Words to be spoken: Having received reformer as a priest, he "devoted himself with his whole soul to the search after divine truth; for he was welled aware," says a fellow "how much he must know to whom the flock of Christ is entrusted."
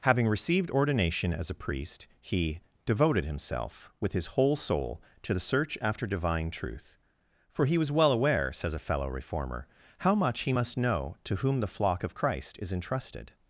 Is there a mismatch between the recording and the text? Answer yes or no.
yes